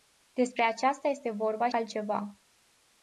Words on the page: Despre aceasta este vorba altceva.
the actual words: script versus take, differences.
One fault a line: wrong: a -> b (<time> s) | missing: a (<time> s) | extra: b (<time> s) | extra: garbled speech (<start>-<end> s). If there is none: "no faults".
no faults